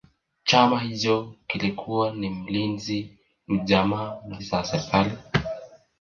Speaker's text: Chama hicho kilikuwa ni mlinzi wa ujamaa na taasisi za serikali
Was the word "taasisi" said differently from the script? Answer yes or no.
yes